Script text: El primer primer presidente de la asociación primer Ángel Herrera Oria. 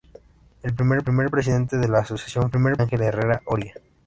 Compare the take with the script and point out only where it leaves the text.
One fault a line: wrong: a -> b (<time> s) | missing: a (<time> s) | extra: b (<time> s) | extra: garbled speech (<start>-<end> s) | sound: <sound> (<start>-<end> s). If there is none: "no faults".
no faults